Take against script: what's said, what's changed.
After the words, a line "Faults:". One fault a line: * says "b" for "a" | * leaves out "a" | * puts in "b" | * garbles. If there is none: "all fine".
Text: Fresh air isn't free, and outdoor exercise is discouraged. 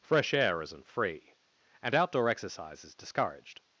Fresh air isn't free, and outdoor exercise is discouraged.
Faults:
all fine